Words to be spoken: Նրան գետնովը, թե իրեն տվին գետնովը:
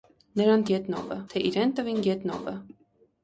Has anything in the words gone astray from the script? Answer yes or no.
no